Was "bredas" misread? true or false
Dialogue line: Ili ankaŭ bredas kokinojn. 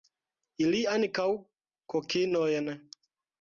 true